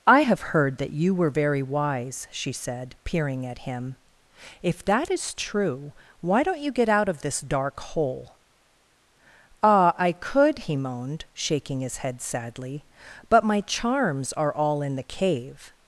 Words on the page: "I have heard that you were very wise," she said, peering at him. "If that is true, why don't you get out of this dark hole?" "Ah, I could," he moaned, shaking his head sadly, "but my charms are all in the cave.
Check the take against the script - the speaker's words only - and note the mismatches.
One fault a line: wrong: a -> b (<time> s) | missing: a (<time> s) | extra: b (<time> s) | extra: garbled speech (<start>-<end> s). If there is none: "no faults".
no faults